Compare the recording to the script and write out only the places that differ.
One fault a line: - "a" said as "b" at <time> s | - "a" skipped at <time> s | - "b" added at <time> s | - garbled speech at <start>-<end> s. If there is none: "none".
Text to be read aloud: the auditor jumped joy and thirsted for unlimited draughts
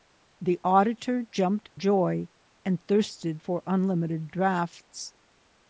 none